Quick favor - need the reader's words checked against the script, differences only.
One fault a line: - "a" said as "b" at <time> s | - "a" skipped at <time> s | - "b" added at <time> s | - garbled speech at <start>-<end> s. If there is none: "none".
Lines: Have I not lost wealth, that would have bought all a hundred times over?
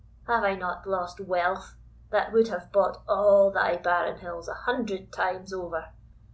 - "thy barren hills" added at 3.5 s